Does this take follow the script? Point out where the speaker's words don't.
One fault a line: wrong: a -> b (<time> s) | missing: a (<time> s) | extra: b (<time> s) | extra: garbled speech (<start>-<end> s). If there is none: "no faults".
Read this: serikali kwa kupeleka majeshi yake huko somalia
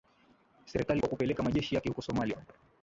no faults